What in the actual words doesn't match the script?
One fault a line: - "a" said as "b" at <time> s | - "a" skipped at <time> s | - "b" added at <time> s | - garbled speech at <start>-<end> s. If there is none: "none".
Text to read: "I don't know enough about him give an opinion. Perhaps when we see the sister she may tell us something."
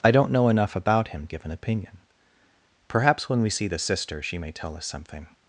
none